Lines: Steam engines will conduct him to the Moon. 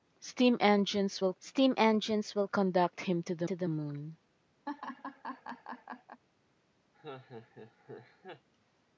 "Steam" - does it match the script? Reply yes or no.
yes